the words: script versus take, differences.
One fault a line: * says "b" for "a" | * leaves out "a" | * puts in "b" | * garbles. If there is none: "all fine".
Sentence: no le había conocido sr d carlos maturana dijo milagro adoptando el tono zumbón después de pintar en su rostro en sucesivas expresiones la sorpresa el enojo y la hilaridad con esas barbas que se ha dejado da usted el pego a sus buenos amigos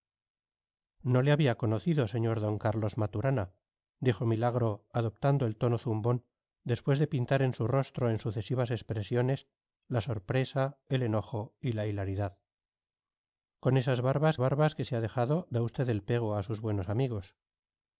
* puts in "barbas"